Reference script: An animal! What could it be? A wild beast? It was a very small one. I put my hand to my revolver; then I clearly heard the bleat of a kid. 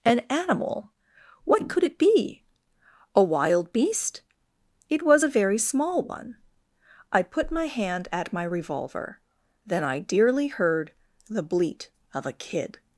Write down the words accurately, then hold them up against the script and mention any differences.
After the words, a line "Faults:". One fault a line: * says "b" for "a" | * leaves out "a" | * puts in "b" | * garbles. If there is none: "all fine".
An animal! What could it be? A wild beast? It was a very small one. I put my hand at my revolver; then I dearly heard the bleat of a kid.
Faults:
* says "at" for "to"
* says "dearly" for "clearly"